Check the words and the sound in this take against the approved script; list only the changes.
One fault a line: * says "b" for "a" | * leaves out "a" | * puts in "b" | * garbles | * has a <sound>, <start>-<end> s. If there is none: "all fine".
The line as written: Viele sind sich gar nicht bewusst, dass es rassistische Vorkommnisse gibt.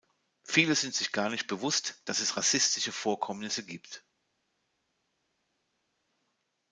all fine